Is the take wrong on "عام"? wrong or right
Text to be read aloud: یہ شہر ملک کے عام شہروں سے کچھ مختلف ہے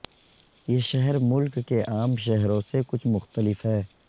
right